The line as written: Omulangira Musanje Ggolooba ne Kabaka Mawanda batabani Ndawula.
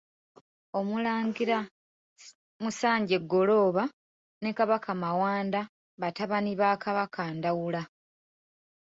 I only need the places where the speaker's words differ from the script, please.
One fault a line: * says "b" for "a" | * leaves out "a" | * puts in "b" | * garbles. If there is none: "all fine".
* puts in "ba Kabaka"